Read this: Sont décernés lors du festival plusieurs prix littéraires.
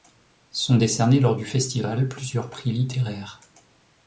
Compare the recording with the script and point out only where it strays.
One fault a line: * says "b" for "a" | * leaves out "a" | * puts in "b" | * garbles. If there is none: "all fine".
all fine